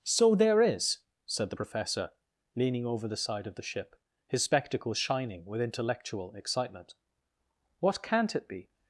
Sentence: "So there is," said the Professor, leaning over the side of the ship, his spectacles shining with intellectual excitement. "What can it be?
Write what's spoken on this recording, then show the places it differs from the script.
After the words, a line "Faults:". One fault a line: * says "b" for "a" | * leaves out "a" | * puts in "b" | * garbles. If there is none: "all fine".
"So there is," said the Professor, leaning over the side of the ship, his spectacles shining with intellectual excitement. "What can't it be?
Faults:
* says "can't" for "can"